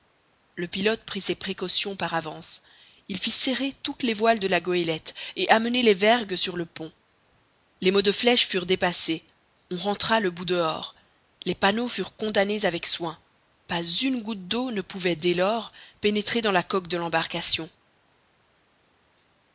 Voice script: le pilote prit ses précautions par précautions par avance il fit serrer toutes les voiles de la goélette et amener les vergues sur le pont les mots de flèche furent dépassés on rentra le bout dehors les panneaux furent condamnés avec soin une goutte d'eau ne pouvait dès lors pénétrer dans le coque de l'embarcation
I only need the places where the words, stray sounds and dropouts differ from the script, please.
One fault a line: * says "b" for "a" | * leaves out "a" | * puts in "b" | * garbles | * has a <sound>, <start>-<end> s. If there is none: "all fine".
* leaves out "précautions par"
* puts in "pas"
* says "la" for "le"